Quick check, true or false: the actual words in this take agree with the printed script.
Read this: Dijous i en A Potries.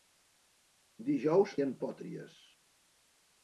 true